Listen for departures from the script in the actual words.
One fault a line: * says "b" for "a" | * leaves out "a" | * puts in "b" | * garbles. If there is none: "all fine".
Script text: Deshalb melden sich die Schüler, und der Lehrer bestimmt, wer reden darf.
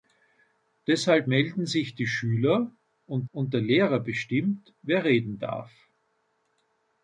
* puts in "und"